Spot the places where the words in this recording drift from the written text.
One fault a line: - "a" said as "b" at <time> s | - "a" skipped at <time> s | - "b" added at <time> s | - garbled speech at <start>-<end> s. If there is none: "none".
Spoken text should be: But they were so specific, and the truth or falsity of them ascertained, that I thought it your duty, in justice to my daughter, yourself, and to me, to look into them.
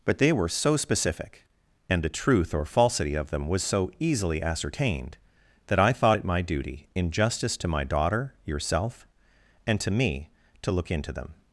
- "was so easily" added at 3.5 s
- "your" said as "my" at 6.2 s